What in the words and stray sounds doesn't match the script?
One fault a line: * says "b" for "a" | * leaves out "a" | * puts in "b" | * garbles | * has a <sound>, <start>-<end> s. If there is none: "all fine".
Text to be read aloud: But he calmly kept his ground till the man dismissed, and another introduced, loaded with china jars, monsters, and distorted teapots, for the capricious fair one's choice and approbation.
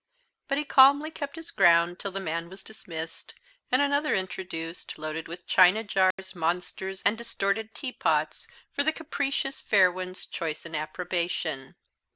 * puts in "was"
* has a dropout, 6.1-6.2 s